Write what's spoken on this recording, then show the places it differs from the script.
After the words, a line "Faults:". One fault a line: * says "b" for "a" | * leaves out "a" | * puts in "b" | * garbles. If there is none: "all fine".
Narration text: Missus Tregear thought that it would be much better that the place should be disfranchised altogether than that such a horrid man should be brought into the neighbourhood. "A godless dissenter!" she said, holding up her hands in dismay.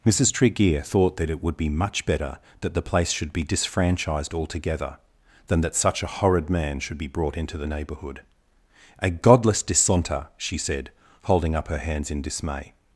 Missus Tregear thought that it would be much better that the place should be disfranchised altogether than that such a horrid man should be brought into the neighbourhood. "A godless dissenter!" she said, holding up her hands in dismay.
Faults:
all fine